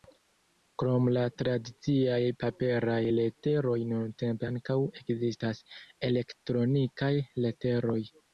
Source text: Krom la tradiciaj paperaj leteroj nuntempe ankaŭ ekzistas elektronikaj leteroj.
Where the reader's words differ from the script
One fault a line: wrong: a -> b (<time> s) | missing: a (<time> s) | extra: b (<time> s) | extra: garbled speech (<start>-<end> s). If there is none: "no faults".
no faults